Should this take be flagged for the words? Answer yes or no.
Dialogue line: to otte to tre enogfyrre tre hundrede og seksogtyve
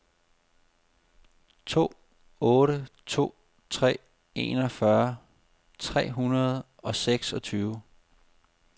no